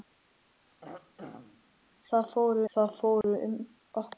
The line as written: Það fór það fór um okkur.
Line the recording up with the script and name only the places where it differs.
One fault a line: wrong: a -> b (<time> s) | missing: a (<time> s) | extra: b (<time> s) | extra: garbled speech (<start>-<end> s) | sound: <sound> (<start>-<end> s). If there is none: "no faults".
sound: throat clearing (0.8-1.7 s)
sound: dropout (3.2-3.2 s)